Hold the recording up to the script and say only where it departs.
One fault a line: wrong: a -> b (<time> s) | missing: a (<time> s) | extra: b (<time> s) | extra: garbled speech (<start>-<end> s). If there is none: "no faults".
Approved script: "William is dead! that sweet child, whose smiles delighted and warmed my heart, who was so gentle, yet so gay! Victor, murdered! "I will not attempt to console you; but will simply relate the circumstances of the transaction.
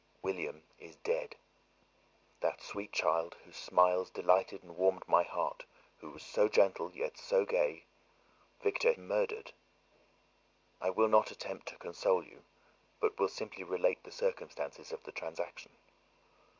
no faults